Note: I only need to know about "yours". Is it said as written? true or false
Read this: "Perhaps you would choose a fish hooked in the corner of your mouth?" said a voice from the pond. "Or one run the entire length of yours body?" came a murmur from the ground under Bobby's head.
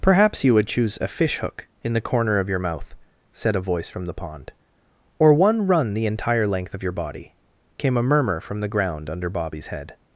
false